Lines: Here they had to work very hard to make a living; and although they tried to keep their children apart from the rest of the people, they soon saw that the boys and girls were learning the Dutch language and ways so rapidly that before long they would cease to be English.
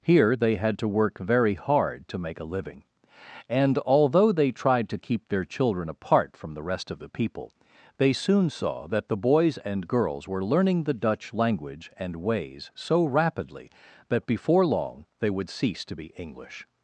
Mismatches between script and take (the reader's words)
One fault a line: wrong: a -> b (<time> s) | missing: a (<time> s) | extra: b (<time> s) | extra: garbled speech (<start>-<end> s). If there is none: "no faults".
no faults